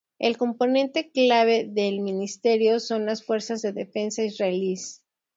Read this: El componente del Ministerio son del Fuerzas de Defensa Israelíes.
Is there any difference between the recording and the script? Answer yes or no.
yes